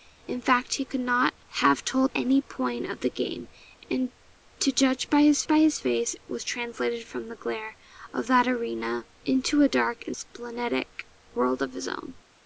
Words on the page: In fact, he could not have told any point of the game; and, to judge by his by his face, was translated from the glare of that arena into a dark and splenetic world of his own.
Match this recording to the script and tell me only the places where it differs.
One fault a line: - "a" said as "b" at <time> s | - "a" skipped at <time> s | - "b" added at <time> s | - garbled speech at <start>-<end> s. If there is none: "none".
none